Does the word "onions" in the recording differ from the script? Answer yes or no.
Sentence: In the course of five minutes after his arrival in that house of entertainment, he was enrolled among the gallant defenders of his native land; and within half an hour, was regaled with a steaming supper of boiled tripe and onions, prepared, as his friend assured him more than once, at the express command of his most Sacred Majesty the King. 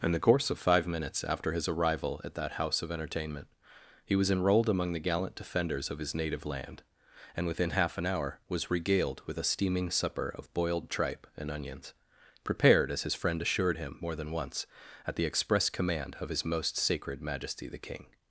no